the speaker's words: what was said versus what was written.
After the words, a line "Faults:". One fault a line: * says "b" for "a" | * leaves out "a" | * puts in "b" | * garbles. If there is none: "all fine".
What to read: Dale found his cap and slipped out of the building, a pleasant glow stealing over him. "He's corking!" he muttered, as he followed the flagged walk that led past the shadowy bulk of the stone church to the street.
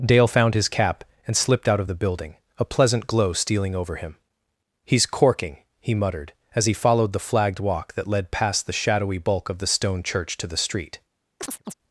Dale found his cap and slipped out of the building, a pleasant glow stealing over him. "He's corking!" he muttered, as he followed the flagged walk that led past the shadowy bulk of the stone church to the street.
Faults:
all fine